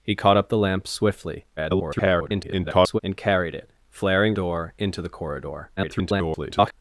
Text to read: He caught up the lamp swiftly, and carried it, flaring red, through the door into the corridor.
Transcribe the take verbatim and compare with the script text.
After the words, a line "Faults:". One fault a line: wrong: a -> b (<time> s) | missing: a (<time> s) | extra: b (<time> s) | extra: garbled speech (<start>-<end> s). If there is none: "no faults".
He caught up the lamp swiftly, [garbled] and carried it, flaring door into the corridor. [garbled]
Faults:
extra: garbled speech (1.6-3.0 s)
missing: red through the (4.3 s)
extra: garbled speech (5.8-6.7 s)